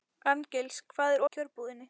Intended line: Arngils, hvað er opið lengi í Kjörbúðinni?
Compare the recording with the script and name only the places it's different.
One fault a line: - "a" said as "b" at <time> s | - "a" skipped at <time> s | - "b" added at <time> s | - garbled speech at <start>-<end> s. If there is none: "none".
- "opið lengi" skipped at 1.2 s